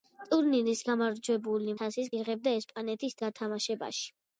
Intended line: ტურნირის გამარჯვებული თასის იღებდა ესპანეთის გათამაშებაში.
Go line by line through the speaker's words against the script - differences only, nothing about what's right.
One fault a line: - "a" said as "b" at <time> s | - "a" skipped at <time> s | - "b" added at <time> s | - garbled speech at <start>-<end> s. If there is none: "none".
none